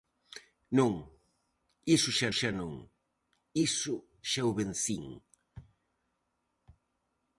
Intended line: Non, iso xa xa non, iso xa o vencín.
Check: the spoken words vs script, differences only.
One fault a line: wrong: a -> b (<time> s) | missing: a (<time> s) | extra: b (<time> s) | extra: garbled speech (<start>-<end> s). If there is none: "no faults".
no faults